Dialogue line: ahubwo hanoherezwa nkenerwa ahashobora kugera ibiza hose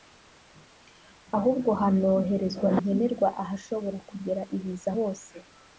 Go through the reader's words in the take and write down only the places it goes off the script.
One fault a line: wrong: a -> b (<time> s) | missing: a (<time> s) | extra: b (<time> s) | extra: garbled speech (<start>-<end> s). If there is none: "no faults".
no faults